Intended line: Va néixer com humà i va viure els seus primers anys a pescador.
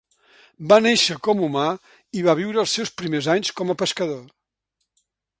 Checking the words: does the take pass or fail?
fail